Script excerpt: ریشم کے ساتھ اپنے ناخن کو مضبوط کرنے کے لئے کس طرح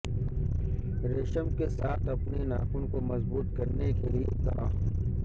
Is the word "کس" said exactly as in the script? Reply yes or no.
no